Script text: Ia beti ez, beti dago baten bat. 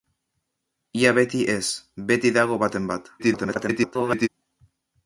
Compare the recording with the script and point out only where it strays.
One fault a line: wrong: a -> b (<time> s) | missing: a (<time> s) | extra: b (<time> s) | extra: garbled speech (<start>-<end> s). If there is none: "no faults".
extra: garbled speech (3.2-4.3 s)